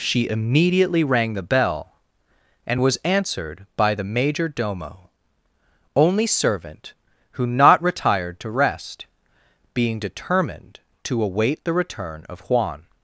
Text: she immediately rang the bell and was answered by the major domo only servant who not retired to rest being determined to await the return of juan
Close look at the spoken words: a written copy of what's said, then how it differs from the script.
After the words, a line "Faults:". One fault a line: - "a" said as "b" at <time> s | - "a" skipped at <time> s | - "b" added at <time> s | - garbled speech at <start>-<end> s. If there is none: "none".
she immediately rang the bell and was answered by the major domo only servant who not retired to rest being determined to await the return of juan
Faults:
none